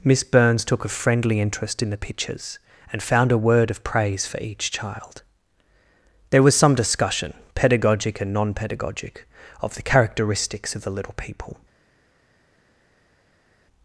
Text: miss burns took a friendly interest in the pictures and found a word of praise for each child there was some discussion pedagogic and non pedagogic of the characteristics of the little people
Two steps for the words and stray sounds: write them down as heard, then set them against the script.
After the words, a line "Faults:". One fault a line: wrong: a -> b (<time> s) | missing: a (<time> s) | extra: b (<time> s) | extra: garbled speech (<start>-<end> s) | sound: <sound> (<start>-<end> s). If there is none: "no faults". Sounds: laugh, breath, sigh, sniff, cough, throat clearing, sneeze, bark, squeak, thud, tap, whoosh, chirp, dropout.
miss burns took a friendly interest in the pictures and found a word of praise for each child there was some discussion pedagogic and non pedagogic of the characteristics of the little people
Faults:
no faults